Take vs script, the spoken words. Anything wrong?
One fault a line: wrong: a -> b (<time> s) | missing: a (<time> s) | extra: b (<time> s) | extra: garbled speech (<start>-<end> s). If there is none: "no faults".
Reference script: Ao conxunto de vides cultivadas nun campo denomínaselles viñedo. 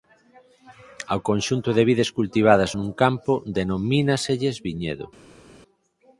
no faults